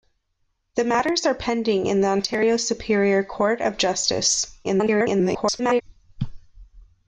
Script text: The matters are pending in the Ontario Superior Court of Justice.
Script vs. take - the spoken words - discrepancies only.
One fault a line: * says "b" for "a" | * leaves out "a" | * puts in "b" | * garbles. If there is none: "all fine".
* garbles